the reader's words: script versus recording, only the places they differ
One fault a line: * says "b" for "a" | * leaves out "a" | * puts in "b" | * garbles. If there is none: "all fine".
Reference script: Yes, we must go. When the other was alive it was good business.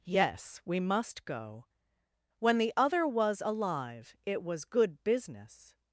all fine